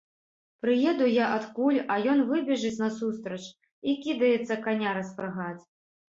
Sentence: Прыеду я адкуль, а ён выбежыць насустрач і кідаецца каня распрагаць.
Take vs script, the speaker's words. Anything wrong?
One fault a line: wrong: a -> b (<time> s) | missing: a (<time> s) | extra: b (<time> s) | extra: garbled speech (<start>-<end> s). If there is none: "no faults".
no faults